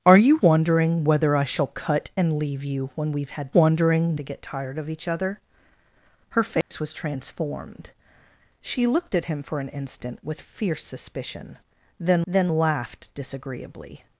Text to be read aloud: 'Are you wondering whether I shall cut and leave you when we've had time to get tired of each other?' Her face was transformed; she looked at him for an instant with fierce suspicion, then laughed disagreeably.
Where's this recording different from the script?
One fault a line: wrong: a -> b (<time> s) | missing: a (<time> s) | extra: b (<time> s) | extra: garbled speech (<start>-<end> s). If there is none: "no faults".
wrong: time -> wondering (3.5 s)
extra: then (12.3 s)